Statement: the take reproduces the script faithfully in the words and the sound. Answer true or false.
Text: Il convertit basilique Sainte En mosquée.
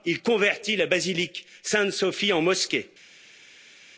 false